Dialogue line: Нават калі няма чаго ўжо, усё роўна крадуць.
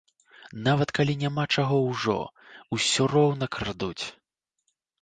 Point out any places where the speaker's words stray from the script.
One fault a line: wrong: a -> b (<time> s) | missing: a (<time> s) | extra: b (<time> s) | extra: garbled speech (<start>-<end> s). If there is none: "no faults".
no faults